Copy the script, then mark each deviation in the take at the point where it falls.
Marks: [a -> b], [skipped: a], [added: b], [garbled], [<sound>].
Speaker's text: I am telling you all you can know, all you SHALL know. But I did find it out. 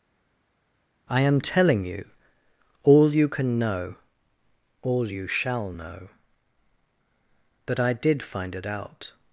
I am telling you all you can know, all you SHALL know. [But -> That] I did find it out.